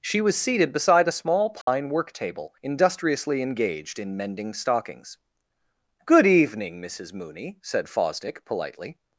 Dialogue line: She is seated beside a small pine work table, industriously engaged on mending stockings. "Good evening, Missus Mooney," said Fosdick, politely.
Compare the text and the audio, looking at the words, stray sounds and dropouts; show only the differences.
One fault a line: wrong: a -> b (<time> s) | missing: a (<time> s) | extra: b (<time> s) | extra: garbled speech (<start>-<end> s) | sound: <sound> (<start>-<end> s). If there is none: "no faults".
wrong: is -> was (0.2 s)
sound: dropout (1.6-1.7 s)
wrong: on -> in (4.0 s)